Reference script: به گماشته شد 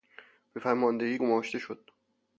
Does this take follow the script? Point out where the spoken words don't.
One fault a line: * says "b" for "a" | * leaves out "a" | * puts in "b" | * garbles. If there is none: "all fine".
* puts in "فرماندهی"